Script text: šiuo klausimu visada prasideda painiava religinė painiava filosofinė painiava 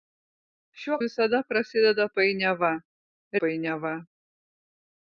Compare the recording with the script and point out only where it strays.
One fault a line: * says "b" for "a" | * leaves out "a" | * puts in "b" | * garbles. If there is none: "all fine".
* leaves out "klausimu"
* leaves out "religinė painiava filosofinė"